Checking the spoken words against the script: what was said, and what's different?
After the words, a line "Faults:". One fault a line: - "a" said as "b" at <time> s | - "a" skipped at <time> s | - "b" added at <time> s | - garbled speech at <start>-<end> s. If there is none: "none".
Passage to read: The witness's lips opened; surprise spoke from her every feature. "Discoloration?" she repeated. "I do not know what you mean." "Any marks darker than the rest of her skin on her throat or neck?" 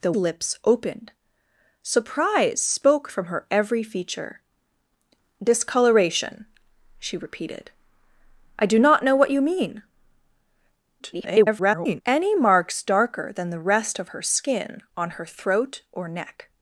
The lips opened; surprise spoke from her every feature. "Discoloration?" she repeated. "I do not know what you mean." [garbled] "Any marks darker than the rest of her skin on her throat or neck?"
Faults:
- "witness's" skipped at 0.1 s
- garbled speech at 11.0-12.0 s